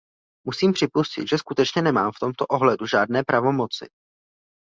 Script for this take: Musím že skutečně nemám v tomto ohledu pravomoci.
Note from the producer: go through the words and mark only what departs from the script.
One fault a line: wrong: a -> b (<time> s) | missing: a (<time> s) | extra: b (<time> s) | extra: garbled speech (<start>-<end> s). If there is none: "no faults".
extra: připustit (0.7 s)
extra: žádné (2.9 s)